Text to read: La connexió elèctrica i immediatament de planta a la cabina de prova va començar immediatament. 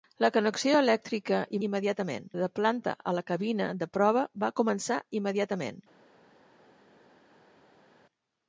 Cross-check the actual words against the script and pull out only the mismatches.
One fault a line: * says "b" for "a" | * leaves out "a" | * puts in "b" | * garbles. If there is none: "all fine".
all fine